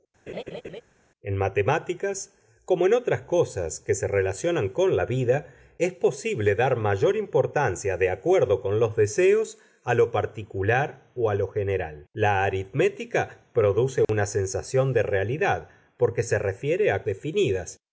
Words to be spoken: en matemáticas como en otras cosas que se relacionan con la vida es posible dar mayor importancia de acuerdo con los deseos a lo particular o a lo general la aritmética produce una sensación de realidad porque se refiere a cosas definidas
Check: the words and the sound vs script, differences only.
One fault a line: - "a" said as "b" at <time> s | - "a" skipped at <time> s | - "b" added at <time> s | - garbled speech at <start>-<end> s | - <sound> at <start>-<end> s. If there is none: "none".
- laugh at 0.3-0.8 s
- dropout at 14.0-14.1 s
- "cosas" skipped at 17.1 s